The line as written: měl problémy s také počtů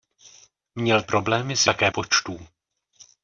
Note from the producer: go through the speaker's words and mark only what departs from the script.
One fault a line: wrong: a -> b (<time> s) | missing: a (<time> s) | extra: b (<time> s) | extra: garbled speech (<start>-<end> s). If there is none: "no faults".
no faults